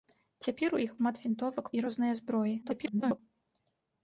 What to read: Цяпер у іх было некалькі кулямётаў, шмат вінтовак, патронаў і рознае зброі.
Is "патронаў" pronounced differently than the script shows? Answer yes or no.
yes